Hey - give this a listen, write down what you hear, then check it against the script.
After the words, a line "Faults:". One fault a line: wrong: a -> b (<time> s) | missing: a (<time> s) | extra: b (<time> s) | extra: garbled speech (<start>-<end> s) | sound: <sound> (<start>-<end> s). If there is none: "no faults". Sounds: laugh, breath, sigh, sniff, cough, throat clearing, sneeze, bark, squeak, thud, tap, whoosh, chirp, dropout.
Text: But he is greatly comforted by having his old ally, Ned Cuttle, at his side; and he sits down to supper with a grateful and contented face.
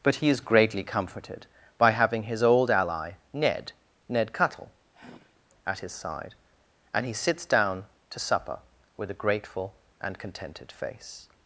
But he is greatly comforted by having his old ally, Ned Ned Cuttle, at his side; and he sits down to supper with a grateful and contented face.
Faults:
extra: Ned (4.1 s)
sound: sigh (4.9-5.4 s)